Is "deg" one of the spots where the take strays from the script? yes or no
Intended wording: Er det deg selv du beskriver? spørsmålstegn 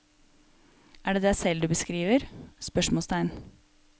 no